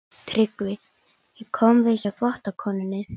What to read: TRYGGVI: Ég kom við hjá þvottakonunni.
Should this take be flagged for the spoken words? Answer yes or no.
no